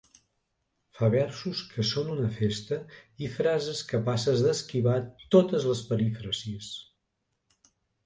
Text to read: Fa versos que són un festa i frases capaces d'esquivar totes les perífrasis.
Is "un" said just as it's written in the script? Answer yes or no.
no